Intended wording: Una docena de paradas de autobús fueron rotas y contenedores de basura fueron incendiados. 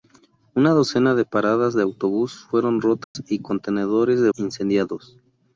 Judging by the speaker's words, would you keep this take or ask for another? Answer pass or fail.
fail